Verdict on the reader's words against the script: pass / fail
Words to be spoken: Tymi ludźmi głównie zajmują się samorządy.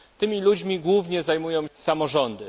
fail